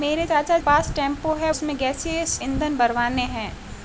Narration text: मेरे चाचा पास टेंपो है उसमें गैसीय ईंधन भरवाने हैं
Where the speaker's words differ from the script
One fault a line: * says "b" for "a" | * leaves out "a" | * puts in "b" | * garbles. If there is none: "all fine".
all fine